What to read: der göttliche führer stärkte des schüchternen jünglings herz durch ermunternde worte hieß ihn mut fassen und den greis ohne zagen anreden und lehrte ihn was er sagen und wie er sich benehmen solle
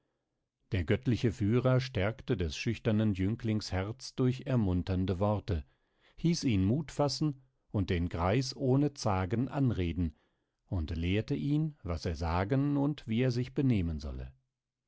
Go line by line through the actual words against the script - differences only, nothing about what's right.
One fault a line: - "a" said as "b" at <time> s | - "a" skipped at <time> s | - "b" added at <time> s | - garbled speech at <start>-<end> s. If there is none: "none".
none